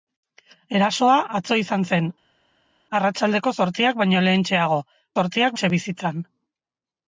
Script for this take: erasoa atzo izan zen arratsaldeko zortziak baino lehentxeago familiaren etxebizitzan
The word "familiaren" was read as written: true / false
false